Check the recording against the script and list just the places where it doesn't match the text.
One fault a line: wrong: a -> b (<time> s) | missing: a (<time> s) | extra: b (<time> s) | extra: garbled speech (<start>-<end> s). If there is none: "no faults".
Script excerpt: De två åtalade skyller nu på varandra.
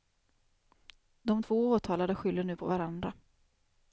no faults